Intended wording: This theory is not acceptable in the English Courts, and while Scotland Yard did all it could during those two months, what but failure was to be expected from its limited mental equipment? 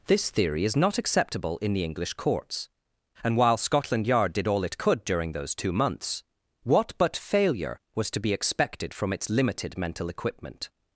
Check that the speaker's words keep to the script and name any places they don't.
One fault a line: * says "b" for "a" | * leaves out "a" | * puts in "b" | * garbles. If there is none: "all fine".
all fine